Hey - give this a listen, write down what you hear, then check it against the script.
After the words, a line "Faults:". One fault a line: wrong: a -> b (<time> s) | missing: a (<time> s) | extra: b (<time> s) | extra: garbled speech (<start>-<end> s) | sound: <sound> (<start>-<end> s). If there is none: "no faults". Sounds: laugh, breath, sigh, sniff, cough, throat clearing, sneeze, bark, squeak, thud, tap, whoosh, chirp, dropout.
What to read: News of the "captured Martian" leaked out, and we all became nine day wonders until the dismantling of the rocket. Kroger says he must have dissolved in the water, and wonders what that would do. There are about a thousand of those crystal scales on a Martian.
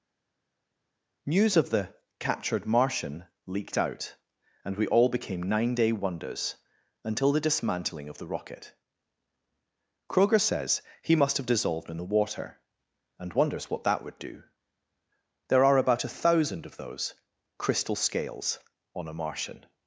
News of the "captured Martian" leaked out, and we all became nine day wonders until the dismantling of the rocket. Kroger says he must have dissolved in the water, and wonders what that would do. There are about a thousand of those crystal scales on a Martian.
Faults:
no faults